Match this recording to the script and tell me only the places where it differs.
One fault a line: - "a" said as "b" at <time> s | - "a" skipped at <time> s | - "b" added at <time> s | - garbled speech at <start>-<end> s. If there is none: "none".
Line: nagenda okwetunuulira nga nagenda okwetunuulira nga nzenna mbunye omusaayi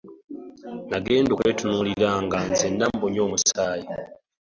- "nagenda okwetunuulira nga" skipped at 2.4 s